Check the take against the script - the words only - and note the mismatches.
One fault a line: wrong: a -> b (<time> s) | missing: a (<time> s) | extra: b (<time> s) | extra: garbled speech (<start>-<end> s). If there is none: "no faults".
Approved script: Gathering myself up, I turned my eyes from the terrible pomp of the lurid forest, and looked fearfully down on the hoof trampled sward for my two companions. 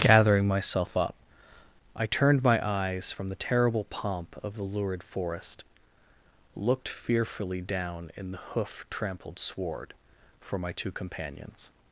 missing: and (5.6 s)
wrong: on -> in (8.2 s)